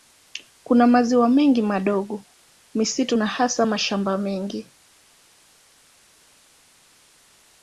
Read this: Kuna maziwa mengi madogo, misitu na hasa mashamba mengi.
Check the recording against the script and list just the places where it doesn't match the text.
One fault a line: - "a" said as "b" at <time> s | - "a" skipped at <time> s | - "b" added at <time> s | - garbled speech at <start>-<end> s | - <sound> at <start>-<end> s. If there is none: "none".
none